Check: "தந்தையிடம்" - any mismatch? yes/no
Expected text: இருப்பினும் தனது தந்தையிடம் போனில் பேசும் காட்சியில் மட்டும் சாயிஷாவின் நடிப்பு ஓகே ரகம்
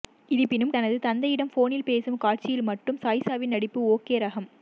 no